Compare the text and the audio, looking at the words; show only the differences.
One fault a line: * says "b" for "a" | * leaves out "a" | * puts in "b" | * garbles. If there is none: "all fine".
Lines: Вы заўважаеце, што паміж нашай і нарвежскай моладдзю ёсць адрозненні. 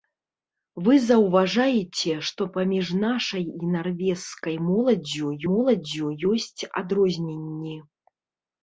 * puts in "моладдзю"